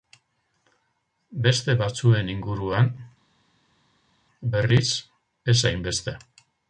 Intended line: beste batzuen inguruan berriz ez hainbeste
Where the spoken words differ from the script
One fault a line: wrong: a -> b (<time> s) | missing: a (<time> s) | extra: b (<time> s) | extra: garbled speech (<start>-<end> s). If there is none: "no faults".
no faults